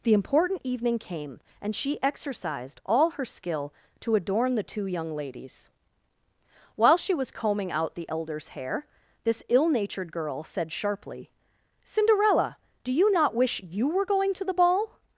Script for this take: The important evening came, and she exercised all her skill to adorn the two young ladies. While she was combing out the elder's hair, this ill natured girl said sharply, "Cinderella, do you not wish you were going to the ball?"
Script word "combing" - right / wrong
right